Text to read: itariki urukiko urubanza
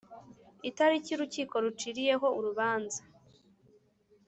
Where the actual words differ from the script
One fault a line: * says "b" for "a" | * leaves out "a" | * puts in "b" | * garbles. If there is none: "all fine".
* puts in "ruciriyeho"